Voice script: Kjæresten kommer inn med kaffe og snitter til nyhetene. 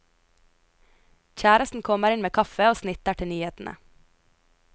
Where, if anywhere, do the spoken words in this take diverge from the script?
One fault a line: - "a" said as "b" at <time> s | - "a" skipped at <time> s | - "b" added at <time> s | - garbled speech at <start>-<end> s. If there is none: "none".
none